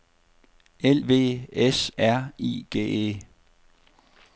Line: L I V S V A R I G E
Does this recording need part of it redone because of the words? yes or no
yes